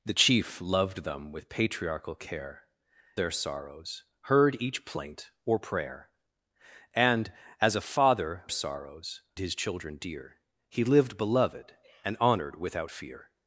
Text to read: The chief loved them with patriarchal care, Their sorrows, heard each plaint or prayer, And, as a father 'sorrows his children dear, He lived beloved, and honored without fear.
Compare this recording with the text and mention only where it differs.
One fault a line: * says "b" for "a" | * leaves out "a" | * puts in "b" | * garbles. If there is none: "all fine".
all fine